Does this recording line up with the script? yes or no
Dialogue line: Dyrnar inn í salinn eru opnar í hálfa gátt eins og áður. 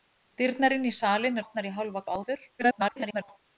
no